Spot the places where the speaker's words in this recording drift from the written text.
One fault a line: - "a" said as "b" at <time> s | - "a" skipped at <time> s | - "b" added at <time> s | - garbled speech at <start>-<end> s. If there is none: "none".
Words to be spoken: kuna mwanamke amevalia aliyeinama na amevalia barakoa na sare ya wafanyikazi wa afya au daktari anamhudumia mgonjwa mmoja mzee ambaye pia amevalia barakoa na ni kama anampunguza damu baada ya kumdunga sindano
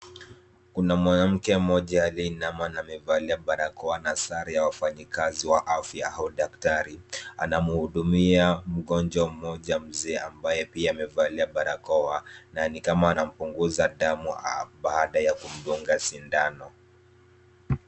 - "amevalia" said as "mmoja" at 1.6 s